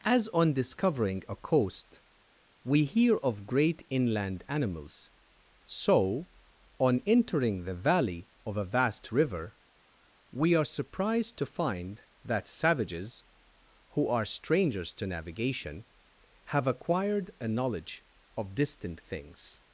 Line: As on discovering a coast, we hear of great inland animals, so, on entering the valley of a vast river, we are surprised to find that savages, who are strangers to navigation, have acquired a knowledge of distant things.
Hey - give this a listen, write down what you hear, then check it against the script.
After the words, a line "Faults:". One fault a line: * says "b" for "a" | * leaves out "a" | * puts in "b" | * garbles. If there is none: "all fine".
As on discovering a coast, we hear of great inland animals, so, on entering the valley of a vast river, we are surprised to find that savages, who are strangers to navigation, have acquired a knowledge of distant things.
Faults:
all fine